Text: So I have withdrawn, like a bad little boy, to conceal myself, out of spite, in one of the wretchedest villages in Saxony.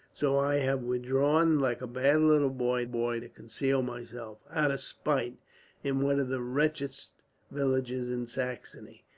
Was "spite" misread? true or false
false